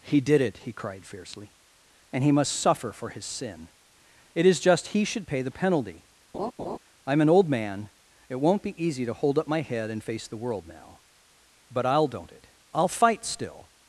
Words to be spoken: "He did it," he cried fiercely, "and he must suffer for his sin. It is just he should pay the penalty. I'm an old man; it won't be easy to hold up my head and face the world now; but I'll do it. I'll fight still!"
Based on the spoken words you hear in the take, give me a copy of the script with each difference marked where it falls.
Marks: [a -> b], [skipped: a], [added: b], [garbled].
"He did it," he cried fiercely, "and he must suffer for his sin. It is just he should pay the penalty. I'm an old man; it won't be easy to hold up my head and face the world now; but I'll [do -> don't] it. I'll fight still!"